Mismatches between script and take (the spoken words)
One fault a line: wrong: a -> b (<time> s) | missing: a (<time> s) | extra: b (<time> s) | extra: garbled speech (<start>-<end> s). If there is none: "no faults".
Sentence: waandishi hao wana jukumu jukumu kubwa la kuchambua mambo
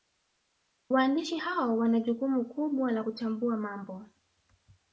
missing: jukumu (2.4 s)